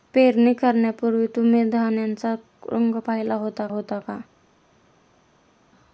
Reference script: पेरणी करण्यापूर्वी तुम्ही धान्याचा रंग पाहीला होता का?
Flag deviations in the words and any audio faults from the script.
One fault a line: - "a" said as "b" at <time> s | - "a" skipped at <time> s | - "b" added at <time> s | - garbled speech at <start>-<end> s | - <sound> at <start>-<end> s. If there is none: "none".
- "होता" added at 3.7 s